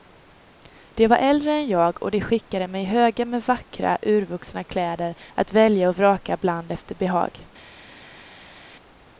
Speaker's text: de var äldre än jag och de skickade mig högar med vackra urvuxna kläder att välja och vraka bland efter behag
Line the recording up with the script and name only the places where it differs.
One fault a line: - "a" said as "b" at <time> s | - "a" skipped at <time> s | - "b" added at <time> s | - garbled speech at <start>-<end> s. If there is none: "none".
none